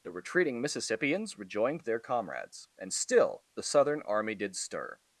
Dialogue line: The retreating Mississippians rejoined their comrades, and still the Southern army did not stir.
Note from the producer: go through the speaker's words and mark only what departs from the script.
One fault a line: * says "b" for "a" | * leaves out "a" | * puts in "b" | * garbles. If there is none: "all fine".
* leaves out "not"